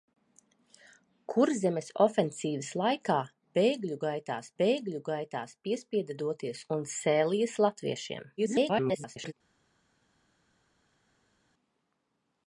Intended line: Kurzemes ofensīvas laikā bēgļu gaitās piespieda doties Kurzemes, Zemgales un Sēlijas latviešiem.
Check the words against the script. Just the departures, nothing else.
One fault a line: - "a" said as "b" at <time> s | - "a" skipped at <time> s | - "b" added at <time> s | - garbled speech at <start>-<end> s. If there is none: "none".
- "bēgļu gaitās" added at 4.6 s
- "Kurzemes Zemgales" skipped at 6.6 s
- garbled speech at 8.4-9.3 s